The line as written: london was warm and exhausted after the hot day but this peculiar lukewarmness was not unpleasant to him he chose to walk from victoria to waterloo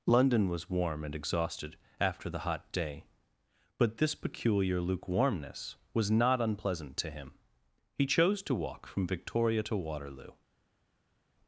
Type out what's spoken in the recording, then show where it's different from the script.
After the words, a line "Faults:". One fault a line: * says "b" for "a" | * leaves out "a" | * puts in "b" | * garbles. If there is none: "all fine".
london was warm and exhausted after the hot day but this peculiar lukewarmness was not unpleasant to him he chose to walk from victoria to waterloo
Faults:
all fine